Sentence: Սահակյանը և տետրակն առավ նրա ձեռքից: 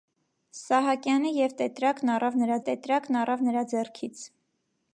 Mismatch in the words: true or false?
true